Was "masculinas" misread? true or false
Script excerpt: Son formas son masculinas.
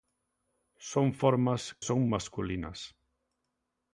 false